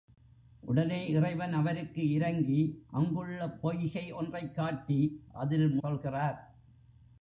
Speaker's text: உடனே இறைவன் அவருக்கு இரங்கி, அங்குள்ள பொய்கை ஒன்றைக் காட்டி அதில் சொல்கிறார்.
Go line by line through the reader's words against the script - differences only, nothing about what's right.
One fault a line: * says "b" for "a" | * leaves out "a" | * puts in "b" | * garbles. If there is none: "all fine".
all fine